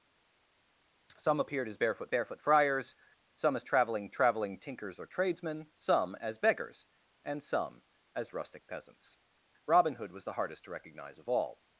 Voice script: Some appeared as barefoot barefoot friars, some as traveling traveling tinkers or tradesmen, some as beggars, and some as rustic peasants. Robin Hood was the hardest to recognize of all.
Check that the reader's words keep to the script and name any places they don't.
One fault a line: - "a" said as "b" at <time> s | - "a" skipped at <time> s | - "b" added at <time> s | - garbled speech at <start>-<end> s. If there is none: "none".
none